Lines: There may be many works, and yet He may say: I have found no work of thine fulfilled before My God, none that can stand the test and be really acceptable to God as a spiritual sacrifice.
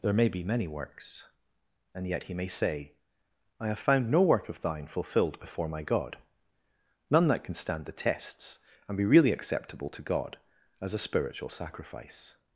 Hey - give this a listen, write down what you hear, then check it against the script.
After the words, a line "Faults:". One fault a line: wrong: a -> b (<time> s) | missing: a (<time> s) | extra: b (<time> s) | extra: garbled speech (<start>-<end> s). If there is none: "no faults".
There may be many works, and yet He may say: I have found no work of thine fulfilled before My God, none that can stand the tests and be really acceptable to God as a spiritual sacrifice.
Faults:
wrong: test -> tests (7.9 s)